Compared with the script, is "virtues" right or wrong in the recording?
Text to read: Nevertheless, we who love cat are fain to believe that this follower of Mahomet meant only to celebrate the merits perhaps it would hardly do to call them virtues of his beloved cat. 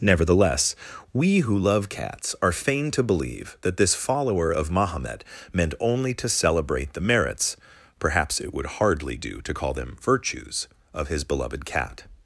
right